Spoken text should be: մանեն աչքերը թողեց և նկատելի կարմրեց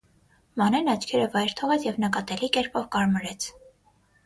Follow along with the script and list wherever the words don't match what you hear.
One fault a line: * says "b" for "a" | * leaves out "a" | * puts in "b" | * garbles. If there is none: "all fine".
* puts in "վայր"
* puts in "կերպով"